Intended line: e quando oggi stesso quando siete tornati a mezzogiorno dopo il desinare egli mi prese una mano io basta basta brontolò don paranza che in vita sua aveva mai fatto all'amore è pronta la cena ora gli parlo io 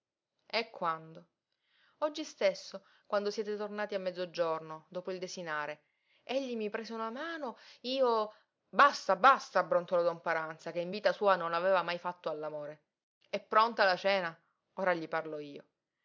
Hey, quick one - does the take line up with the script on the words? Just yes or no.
no